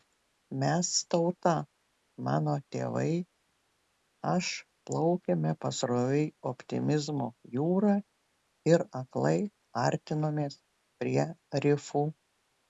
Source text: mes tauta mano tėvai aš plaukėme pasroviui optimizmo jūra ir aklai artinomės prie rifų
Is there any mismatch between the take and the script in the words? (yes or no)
no